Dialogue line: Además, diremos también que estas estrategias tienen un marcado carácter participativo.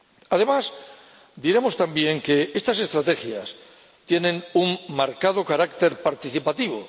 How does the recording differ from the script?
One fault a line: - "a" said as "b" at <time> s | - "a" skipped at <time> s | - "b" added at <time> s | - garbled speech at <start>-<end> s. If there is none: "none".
none